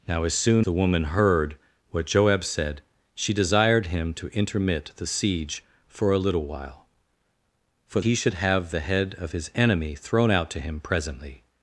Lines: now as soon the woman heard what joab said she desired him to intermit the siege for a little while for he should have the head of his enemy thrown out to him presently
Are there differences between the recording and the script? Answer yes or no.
no